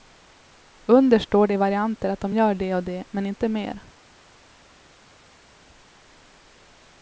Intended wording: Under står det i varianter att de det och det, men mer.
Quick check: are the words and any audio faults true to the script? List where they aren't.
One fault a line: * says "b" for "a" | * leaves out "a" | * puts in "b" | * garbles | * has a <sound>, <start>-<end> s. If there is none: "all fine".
* puts in "gör"
* puts in "inte"